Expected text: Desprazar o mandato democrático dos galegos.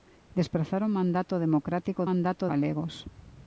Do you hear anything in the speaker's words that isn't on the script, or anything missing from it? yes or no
yes